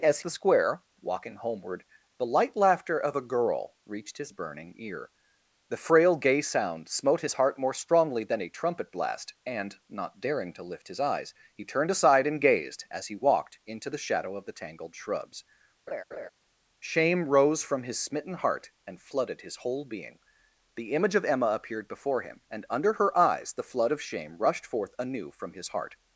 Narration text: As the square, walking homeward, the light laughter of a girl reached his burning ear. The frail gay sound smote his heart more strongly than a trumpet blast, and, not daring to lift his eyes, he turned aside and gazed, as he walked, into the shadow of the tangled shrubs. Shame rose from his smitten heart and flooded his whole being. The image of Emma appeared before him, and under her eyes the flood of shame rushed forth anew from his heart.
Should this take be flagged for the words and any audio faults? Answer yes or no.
yes